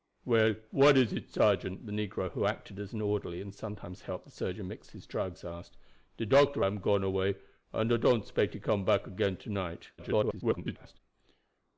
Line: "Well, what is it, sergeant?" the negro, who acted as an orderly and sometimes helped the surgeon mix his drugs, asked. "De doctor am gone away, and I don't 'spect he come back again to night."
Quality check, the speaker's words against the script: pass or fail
fail